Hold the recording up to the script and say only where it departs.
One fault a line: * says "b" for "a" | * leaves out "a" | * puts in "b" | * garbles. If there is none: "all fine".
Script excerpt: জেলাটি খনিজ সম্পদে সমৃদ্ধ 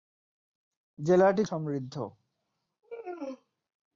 * leaves out "খনিজ সম্পদে"